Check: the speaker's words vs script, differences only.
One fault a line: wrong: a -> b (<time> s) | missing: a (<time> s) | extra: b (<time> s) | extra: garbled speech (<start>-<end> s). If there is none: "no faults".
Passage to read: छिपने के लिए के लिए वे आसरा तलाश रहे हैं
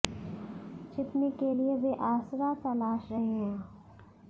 missing: के लिए (1.7 s)